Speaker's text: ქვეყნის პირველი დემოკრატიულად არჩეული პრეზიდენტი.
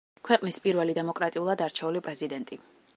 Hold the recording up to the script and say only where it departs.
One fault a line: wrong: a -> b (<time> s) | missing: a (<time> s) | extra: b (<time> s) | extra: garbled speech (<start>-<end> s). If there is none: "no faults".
no faults